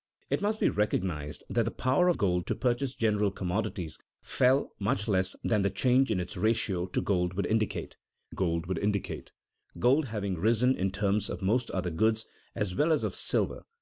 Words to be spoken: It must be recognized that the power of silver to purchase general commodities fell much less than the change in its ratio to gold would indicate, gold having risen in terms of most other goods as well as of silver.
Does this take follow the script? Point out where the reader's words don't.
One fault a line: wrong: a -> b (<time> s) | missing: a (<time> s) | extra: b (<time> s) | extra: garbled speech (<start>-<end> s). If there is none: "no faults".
wrong: silver -> gold (2.1 s)
extra: would indicate gold (8.6 s)